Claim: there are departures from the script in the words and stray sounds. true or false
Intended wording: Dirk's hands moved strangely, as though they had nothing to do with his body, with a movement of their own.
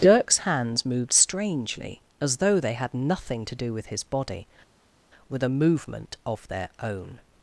false